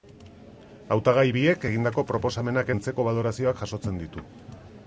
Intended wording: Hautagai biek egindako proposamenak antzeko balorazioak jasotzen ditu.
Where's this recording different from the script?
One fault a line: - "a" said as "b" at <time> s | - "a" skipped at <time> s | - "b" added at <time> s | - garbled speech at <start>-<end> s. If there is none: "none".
none